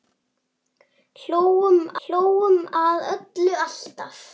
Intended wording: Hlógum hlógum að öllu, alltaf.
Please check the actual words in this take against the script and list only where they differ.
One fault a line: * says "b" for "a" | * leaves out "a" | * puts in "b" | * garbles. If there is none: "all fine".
all fine